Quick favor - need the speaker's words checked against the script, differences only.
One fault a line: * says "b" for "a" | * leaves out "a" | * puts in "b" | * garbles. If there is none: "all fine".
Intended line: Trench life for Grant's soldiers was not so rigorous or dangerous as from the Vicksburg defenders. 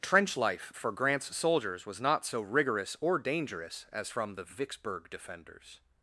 all fine